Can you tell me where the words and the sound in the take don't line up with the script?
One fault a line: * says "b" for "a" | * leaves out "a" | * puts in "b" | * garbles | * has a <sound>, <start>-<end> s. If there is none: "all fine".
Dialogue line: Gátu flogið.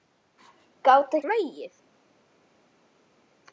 all fine